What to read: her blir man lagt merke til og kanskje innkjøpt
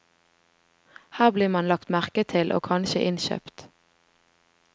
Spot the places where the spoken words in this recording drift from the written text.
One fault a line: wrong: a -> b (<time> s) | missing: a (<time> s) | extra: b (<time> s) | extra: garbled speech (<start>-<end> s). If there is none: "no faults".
no faults